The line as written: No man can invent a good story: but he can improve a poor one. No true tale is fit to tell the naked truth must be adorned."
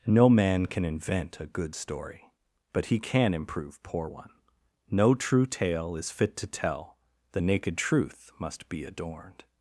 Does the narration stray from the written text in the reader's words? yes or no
yes